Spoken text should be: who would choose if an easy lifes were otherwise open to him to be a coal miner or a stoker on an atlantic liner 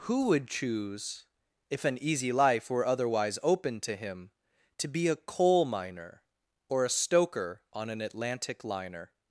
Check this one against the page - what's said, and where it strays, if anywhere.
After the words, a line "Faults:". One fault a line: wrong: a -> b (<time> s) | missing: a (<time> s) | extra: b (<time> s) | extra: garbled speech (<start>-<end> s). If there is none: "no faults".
who would choose if an easy life were otherwise open to him to be a coal miner or a stoker on an atlantic liner
Faults:
wrong: lifes -> life (2.3 s)